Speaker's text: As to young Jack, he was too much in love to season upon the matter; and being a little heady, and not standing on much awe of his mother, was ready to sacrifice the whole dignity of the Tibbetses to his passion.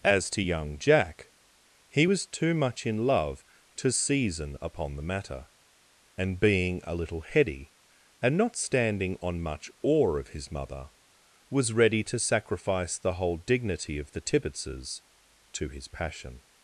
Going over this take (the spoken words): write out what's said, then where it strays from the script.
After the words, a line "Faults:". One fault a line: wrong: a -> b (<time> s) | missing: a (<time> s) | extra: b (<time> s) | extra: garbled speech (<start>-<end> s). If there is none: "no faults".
As to young Jack, he was too much in love to season upon the matter; and being a little heady, and not standing on much awe of his mother, was ready to sacrifice the whole dignity of the Tibbetses to his passion.
Faults:
no faults